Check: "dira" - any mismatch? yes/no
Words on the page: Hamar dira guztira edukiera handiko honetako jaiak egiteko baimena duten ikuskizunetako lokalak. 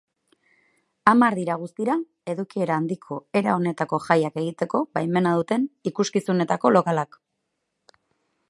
no